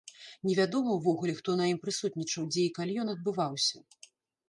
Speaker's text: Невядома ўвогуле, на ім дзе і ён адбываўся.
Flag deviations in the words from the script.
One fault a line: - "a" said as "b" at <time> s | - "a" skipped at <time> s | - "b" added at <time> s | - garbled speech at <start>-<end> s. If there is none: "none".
- "хто" added at 1.4 s
- "прысутнічаў" added at 1.9 s
- "калі" added at 2.8 s